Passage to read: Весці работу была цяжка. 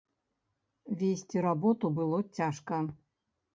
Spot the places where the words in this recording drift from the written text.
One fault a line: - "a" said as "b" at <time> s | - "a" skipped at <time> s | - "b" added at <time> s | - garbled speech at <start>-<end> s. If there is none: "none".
- "была" said as "было" at 2.0 s